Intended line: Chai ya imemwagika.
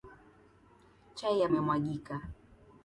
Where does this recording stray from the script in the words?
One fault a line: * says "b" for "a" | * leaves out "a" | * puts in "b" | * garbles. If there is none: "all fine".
all fine